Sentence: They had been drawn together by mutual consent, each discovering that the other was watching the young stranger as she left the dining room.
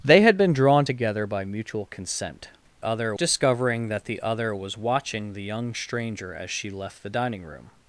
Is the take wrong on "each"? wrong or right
wrong